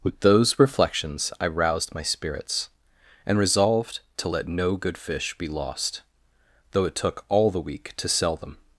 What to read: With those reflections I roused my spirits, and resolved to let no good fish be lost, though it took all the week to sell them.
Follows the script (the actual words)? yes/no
yes